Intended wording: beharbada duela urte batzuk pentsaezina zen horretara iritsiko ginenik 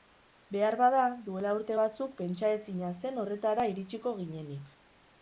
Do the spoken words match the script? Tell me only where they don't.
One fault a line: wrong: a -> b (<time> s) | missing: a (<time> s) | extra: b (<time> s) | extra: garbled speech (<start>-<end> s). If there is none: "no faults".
no faults